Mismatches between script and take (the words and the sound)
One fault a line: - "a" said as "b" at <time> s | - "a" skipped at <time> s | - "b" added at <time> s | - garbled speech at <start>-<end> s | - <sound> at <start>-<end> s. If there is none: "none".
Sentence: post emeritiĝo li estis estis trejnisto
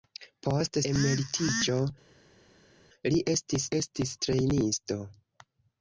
none